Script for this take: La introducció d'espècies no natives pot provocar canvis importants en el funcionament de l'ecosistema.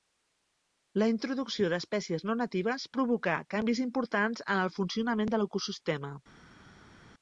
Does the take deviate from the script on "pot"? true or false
true